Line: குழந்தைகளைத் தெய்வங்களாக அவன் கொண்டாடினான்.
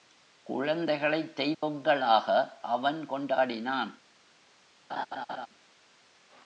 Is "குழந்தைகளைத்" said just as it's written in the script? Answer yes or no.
yes